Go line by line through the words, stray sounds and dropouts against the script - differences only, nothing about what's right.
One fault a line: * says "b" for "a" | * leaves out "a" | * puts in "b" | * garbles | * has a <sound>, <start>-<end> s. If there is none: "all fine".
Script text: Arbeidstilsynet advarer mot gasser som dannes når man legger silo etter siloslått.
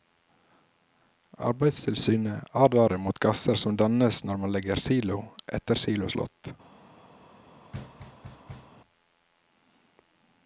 * has a thud, 7.7-8.8 s